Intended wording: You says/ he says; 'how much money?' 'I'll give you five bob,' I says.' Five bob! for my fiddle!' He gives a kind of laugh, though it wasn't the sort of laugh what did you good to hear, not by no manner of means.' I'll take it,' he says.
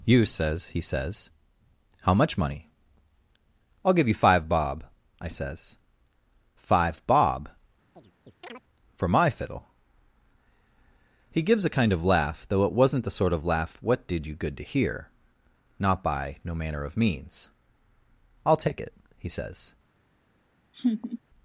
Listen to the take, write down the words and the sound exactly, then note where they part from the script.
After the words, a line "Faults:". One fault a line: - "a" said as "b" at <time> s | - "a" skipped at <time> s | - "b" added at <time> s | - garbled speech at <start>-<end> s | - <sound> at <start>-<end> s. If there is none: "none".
You says/ he says; 'how much money?' 'I'll give you five bob,' I says.' Five bob! for my fiddle!' He gives a kind of laugh, though it wasn't the sort of laugh what did you good to hear, not by no manner of means.' I'll take it,' he says.
Faults:
- chirp at 7.9-8.6 s
- laugh at 20.7-21.2 s